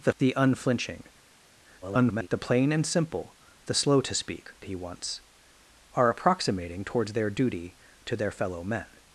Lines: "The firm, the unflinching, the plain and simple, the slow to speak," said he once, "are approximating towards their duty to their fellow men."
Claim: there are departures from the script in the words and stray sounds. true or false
true